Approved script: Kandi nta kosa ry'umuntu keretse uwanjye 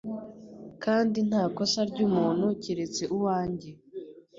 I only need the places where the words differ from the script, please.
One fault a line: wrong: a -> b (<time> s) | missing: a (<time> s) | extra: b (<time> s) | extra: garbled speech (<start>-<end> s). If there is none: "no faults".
no faults